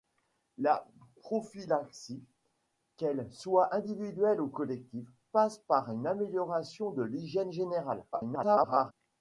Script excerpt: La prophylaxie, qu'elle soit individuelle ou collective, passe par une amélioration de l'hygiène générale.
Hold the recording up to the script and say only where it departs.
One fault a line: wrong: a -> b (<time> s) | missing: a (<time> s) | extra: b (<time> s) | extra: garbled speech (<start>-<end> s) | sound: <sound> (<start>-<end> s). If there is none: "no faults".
extra: garbled speech (8.1-8.9 s)